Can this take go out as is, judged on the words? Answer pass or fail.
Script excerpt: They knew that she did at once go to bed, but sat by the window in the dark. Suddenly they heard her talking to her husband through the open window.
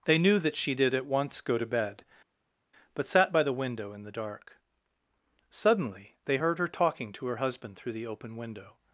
pass